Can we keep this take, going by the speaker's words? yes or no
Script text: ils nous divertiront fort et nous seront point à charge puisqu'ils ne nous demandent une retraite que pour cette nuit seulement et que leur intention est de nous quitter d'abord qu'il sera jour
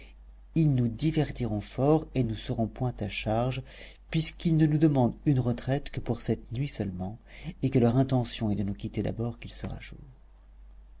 yes